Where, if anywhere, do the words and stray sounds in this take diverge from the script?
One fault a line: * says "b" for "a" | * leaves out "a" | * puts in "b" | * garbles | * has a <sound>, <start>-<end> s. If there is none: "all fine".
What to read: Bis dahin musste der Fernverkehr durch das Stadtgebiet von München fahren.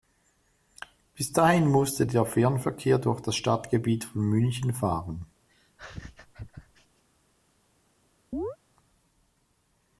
* has a laugh, 5.5-7.0 s
* has a chirp, 8.3-8.6 s